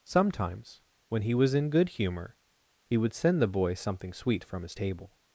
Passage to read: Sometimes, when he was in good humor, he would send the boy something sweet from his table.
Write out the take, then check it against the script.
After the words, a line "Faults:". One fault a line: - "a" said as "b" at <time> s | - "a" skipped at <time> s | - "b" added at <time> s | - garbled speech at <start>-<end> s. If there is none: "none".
Sometimes, when he was in good humor, he would send the boy something sweet from his table.
Faults:
none